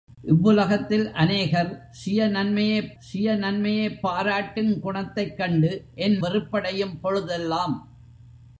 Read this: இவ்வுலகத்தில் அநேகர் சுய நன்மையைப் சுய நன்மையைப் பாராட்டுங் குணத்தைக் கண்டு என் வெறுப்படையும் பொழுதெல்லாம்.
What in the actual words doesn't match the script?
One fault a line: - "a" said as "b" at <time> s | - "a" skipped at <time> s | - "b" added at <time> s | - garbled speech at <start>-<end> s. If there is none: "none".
none